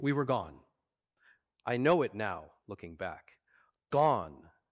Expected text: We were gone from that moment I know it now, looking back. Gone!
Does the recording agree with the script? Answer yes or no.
no